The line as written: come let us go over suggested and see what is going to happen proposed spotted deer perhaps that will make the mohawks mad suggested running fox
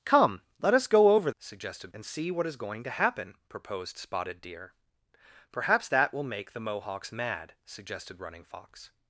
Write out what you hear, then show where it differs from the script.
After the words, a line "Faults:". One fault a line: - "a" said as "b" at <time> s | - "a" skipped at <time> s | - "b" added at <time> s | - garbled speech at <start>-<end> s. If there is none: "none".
come let us go over suggested and see what is going to happen proposed spotted deer perhaps that will make the mohawks mad suggested running fox
Faults:
none